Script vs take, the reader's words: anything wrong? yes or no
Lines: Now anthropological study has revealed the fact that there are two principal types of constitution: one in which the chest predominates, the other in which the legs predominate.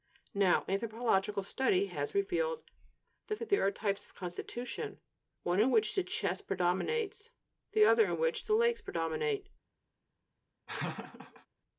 yes